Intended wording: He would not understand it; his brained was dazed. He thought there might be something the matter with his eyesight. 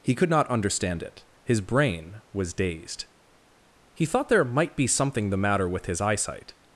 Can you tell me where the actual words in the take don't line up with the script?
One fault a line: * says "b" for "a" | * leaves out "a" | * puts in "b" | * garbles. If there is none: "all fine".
* says "could" for "would"
* says "brain" for "brained"